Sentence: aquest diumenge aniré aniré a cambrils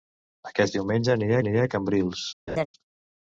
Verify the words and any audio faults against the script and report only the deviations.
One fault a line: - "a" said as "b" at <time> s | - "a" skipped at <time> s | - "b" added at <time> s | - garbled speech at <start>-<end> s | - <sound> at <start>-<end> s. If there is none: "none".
- laugh at 2.5-2.7 s